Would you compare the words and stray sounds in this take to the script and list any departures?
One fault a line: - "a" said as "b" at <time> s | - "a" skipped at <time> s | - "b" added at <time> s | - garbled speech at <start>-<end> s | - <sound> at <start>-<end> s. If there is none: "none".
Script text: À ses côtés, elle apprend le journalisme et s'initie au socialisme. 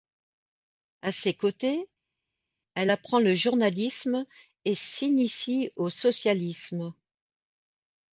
none